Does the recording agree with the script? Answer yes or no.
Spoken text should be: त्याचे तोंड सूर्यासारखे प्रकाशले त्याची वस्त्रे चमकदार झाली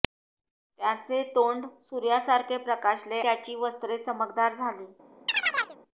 yes